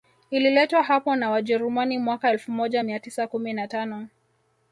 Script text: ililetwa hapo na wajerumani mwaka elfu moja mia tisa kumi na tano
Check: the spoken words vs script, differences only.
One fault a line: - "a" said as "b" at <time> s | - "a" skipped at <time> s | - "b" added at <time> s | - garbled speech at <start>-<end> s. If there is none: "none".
none